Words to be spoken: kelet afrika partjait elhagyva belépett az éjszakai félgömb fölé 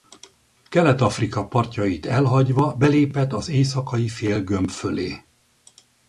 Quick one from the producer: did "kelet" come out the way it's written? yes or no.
yes